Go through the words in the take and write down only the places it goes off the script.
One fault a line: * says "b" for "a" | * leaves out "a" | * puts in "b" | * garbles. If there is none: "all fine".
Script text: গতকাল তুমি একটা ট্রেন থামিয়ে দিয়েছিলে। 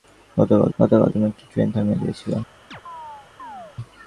* puts in "গতকাল"